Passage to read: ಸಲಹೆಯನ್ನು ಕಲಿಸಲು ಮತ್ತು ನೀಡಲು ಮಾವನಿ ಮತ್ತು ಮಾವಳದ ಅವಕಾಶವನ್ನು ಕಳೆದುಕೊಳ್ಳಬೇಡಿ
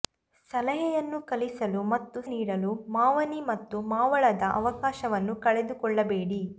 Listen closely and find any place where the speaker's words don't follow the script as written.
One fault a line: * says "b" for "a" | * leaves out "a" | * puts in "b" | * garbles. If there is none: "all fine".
all fine